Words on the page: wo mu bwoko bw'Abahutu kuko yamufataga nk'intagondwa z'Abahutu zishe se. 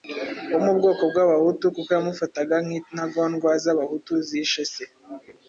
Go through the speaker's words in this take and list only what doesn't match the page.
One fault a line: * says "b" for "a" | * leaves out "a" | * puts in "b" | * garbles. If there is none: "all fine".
all fine